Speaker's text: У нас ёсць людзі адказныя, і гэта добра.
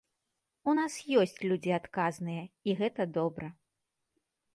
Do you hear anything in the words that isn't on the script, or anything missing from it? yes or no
no